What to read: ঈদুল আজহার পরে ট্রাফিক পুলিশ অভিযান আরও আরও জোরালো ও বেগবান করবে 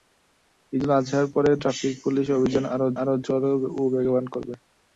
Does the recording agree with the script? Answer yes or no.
yes